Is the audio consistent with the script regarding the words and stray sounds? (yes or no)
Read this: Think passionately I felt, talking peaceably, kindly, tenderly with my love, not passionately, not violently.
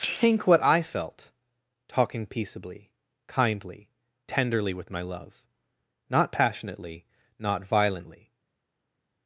no